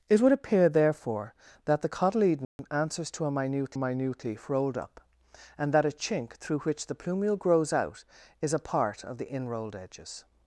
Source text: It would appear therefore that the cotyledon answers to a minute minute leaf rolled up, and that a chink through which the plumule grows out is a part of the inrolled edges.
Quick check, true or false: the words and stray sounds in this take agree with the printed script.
false